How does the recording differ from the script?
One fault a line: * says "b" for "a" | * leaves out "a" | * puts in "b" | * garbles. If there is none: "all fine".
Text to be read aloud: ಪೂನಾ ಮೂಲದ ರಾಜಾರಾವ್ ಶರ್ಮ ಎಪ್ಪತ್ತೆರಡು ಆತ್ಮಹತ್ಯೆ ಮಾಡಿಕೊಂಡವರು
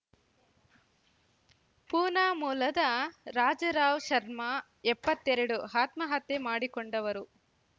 all fine